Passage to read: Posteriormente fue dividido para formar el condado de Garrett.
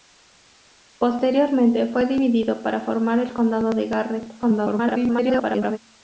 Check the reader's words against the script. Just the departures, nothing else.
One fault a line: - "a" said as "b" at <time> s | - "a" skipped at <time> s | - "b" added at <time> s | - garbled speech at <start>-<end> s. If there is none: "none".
- garbled speech at 4.4-5.8 s